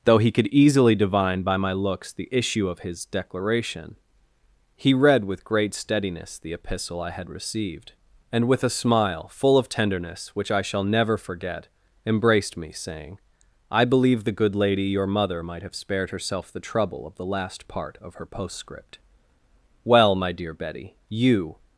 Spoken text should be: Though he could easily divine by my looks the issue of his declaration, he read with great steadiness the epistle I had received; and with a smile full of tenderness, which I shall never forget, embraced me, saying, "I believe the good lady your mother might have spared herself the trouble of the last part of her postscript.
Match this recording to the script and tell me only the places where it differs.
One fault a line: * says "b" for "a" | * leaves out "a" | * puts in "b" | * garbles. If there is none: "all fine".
* puts in "Well my dear Betty you"